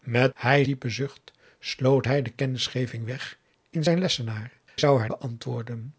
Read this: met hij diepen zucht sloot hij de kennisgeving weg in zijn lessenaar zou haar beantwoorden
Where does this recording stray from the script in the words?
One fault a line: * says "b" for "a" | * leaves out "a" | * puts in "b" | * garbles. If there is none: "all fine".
all fine